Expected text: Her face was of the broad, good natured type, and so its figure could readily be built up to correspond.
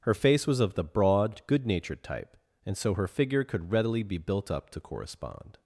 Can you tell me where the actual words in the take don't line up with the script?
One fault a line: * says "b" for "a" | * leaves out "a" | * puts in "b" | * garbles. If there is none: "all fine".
* says "her" for "its"